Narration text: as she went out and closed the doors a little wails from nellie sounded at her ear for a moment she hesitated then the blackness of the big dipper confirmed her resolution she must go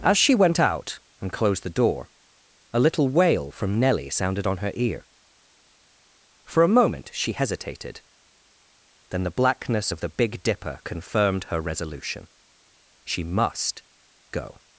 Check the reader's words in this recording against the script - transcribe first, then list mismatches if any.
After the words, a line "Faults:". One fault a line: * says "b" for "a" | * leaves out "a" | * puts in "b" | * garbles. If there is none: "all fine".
as she went out and closed the door a little wail from nellie sounded on her ear for a moment she hesitated then the blackness of the big dipper confirmed her resolution she must go
Faults:
* says "door" for "doors"
* says "wail" for "wails"
* says "on" for "at"